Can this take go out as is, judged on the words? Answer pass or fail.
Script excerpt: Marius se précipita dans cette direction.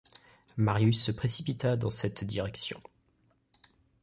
pass